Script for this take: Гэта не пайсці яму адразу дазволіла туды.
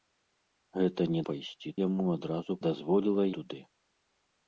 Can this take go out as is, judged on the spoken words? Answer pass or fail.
pass